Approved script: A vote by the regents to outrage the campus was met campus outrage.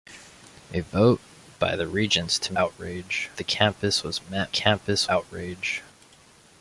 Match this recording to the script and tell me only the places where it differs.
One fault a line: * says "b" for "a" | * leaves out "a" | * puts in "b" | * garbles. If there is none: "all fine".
all fine